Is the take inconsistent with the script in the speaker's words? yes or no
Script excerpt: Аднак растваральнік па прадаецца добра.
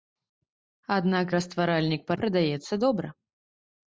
no